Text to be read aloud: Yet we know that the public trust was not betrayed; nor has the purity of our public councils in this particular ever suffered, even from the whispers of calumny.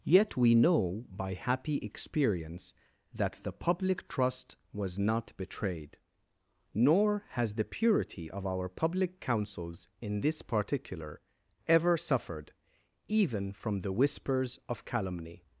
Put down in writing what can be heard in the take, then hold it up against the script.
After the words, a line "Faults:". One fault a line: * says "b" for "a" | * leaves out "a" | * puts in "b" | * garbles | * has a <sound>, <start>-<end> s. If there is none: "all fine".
Yet we know by happy experience that the public trust was not betrayed; nor has the purity of our public councils in this particular ever suffered, even from the whispers of calumny.
Faults:
* puts in "by happy experience"